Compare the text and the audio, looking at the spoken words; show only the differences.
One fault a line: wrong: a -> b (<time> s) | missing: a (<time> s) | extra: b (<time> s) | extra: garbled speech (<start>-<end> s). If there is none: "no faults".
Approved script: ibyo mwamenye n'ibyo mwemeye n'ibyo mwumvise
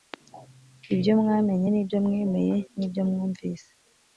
no faults